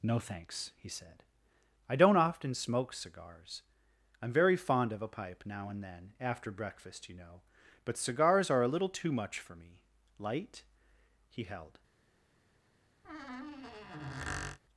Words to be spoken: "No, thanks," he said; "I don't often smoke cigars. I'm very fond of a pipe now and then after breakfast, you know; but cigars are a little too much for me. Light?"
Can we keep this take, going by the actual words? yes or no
no